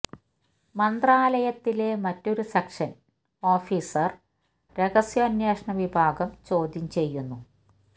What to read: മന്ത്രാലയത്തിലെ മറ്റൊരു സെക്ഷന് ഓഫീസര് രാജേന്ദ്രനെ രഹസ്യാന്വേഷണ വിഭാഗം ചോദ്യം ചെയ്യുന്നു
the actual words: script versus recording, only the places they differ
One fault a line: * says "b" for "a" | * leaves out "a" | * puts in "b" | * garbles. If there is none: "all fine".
* leaves out "രാജേന്ദ്രനെ"